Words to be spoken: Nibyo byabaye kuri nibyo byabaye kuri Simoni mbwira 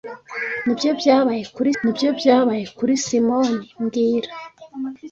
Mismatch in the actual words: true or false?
false